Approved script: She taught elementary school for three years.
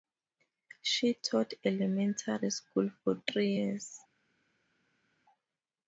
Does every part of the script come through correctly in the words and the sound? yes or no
yes